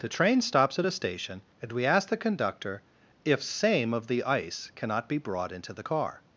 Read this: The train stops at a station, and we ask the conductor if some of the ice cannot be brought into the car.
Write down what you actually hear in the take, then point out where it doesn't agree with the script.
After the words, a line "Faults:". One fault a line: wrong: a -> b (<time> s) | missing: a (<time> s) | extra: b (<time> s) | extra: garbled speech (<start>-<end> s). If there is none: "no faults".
The train stops at a station, and we ask the conductor if same of the ice cannot be brought into the car.
Faults:
wrong: some -> same (3.4 s)